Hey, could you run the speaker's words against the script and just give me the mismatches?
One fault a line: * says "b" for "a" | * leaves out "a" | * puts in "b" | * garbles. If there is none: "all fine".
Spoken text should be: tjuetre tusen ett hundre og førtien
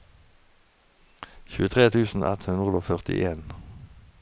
all fine